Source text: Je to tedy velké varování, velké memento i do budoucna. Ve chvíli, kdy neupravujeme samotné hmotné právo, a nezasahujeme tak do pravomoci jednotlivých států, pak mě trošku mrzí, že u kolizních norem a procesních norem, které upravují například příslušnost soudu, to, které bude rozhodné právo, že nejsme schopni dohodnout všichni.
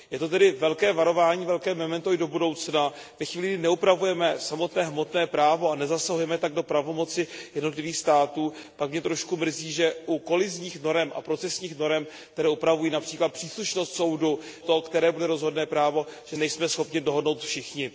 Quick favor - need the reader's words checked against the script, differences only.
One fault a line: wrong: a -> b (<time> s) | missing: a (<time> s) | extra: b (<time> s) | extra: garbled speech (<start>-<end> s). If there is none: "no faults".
no faults